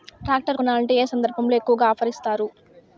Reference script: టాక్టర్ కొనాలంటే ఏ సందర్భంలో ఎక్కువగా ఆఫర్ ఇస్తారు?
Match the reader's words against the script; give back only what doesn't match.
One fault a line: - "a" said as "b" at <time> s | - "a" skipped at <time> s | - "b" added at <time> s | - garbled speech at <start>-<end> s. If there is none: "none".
none